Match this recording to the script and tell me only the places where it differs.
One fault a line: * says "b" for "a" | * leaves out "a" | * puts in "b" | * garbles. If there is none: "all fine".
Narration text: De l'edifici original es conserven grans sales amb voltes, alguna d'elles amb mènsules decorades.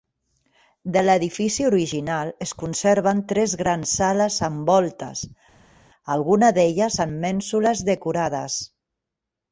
* puts in "tres"